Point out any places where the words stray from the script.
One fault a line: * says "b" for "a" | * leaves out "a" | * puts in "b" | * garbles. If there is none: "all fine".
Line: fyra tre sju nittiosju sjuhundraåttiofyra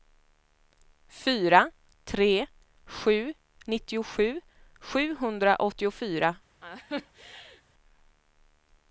all fine